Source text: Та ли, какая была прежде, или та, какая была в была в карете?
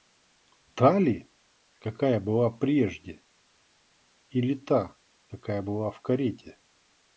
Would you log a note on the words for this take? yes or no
yes